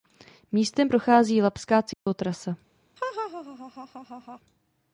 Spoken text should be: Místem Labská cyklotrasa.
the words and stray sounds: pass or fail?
fail